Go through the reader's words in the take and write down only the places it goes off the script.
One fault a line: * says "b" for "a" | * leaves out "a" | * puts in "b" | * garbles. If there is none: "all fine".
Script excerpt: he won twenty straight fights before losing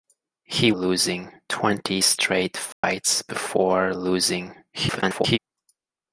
* says "losing" for "won"
* garbles